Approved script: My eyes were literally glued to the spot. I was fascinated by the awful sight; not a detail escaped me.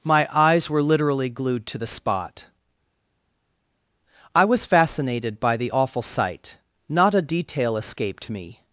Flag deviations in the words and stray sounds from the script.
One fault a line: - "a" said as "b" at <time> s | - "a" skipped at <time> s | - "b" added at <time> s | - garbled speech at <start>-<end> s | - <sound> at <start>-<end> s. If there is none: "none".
none